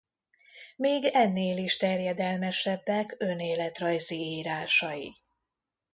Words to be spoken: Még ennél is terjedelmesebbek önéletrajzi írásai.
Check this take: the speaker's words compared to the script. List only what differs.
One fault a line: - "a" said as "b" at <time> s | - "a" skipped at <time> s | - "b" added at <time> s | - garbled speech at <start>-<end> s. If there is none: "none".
none